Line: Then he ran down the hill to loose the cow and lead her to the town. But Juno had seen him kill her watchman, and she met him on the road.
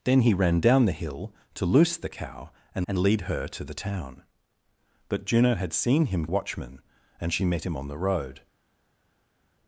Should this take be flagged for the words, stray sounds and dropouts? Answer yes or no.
yes